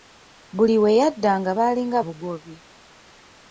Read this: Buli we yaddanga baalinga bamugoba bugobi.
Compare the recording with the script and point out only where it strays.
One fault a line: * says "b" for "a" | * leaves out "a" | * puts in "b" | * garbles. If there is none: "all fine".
* leaves out "bamugoba"